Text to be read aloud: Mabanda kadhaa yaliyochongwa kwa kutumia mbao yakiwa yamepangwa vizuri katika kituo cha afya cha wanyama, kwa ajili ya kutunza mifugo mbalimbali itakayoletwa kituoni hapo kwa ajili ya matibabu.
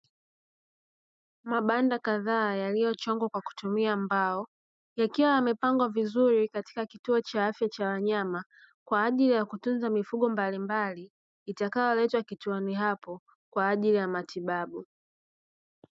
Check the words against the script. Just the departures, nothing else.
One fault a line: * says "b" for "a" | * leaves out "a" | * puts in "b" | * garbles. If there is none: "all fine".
all fine